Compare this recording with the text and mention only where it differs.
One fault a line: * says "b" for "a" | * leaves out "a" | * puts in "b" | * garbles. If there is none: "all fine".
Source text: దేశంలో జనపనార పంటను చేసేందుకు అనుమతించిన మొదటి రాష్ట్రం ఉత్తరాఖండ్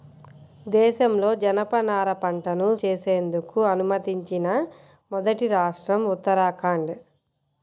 all fine